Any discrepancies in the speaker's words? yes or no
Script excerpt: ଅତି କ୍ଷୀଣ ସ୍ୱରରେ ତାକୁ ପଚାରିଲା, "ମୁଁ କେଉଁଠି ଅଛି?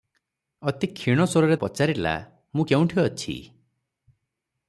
yes